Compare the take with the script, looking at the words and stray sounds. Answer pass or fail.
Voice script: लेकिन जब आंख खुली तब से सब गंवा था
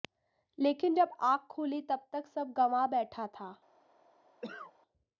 fail